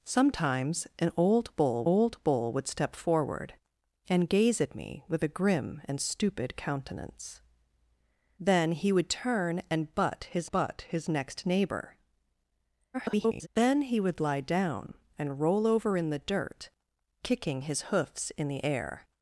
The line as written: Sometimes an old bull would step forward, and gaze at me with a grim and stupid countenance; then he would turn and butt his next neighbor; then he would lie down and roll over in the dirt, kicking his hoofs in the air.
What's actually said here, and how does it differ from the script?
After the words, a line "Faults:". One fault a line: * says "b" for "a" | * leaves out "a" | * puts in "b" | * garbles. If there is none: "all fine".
Sometimes an old bull old bull would step forward, and gaze at me with a grim and stupid countenance; then he would turn and butt his butt his next neighbor; [garbled] then he would lie down and roll over in the dirt, kicking his hoofs in the air.
Faults:
* puts in "old bull"
* puts in "butt his"
* garbles